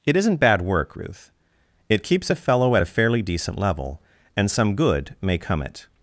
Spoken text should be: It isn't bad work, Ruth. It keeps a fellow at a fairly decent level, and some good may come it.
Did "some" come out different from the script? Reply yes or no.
no